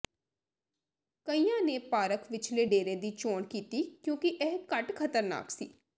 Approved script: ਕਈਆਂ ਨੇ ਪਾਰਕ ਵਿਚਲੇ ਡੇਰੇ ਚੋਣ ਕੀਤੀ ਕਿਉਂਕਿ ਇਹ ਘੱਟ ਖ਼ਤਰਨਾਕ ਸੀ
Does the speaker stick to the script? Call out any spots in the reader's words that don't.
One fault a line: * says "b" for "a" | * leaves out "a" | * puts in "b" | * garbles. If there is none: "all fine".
* puts in "ਦੀ"